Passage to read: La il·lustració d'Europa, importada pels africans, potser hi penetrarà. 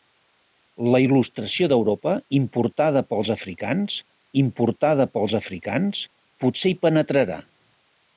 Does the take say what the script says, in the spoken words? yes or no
no